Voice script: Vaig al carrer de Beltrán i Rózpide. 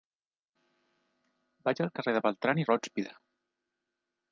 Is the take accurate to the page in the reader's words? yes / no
yes